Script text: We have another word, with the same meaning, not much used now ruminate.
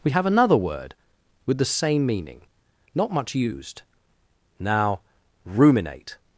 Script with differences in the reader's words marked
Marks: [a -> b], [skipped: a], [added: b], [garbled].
We have another word, with the same meaning, not much used now ruminate.